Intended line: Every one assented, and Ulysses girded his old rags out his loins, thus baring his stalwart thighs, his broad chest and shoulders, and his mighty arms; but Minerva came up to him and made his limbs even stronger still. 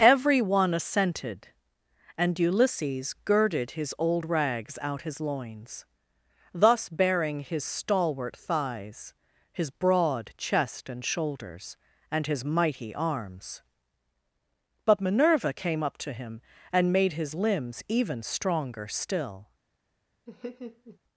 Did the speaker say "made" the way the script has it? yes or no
yes